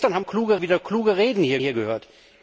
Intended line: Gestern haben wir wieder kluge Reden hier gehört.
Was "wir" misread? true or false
true